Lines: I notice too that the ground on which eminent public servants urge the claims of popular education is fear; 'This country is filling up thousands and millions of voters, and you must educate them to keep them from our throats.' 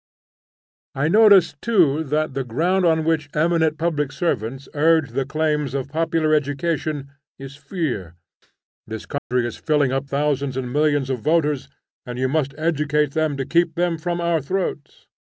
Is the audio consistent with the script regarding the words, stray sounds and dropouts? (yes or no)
no